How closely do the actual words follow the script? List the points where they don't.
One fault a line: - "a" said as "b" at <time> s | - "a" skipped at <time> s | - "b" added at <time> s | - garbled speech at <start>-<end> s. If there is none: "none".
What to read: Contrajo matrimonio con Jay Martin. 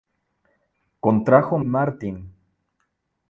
- "matrimonio con Jay" skipped at 1.6 s